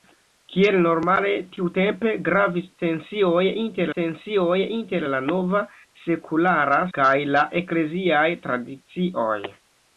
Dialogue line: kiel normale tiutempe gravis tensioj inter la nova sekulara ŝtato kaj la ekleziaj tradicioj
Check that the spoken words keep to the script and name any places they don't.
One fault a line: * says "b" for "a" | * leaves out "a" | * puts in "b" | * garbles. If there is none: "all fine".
* puts in "tensioj inter"
* leaves out "ŝtato"